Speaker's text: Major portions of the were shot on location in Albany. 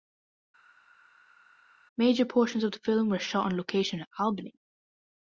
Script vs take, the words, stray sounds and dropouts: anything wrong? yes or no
yes